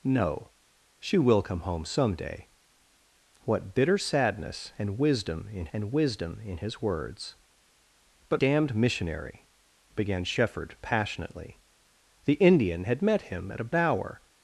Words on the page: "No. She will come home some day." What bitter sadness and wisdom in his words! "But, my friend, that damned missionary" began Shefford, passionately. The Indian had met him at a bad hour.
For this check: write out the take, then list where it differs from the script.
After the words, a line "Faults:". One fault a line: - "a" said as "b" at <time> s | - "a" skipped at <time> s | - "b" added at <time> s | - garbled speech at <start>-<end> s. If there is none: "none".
"No. She will come home some day." What bitter sadness and wisdom in and wisdom in his words! "But, damned missionary" began Shefford, passionately. The Indian had met him at a hour.
Faults:
- "and wisdom in" added at 5.7 s
- "my friend that" skipped at 8.4 s
- "bad" skipped at 13.7 s